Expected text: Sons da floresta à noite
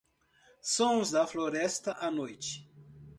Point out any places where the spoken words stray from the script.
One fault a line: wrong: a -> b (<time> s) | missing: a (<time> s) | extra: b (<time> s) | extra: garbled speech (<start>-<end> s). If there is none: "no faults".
no faults